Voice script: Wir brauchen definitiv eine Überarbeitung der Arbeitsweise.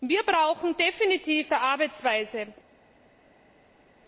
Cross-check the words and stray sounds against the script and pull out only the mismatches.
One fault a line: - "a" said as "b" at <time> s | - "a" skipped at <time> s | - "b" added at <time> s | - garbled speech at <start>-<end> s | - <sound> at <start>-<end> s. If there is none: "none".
- "eine Überarbeitung" skipped at 1.5 s